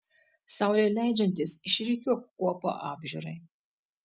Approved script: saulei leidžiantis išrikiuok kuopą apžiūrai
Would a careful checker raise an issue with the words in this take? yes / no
no